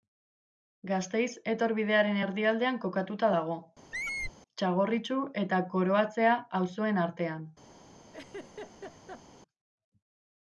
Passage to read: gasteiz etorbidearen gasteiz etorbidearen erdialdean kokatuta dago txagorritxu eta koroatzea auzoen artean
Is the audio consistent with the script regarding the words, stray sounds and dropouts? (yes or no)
no